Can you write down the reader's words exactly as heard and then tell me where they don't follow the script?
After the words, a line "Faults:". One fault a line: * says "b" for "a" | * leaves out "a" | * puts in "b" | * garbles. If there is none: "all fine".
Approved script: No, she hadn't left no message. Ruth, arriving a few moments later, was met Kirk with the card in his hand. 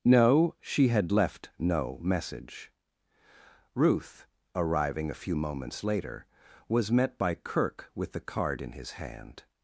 No, she had left no message. Ruth, arriving a few moments later, was met by Kirk with the card in his hand.
Faults:
* says "had" for "hadn't"
* puts in "by"